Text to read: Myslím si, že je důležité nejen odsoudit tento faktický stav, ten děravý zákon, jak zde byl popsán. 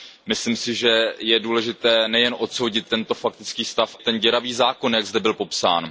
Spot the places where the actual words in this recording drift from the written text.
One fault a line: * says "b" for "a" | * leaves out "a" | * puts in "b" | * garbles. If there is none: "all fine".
all fine